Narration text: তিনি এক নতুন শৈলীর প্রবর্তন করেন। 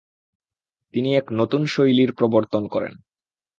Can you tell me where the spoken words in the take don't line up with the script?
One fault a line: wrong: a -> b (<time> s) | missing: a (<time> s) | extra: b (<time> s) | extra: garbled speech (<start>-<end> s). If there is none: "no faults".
no faults